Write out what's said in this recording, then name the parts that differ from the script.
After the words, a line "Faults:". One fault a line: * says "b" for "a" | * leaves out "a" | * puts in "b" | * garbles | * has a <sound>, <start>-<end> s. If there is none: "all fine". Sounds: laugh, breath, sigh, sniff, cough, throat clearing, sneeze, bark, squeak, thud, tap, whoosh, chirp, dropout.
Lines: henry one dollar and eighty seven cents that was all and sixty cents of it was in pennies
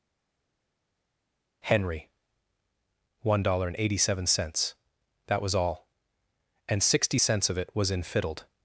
henry one dollar and eighty seven cents that was all and sixty cents of it was in fiddled
Faults:
* says "fiddled" for "pennies"